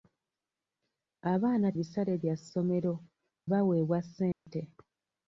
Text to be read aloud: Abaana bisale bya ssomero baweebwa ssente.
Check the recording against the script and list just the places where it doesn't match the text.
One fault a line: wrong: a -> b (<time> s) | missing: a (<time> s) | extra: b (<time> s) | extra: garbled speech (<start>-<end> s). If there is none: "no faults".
no faults